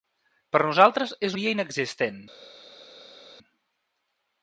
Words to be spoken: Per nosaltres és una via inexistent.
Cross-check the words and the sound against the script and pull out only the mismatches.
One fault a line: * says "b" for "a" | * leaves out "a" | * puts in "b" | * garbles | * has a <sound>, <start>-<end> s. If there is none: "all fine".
* leaves out "una"